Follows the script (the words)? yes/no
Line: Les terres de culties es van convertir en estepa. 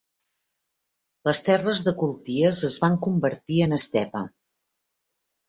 yes